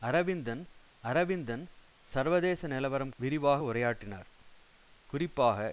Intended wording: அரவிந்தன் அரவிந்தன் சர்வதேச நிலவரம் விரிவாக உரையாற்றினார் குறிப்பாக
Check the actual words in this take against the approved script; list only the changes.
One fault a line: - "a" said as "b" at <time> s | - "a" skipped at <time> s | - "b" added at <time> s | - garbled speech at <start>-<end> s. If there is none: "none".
none